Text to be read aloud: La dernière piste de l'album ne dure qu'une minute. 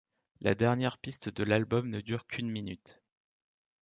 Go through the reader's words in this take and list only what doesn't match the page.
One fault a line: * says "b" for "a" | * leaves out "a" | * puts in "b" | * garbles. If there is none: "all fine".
all fine